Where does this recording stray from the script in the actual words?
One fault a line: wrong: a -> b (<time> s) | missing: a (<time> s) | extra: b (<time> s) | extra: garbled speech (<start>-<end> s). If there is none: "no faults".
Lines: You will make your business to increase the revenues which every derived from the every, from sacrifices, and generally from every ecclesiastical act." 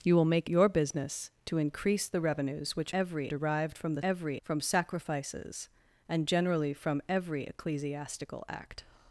no faults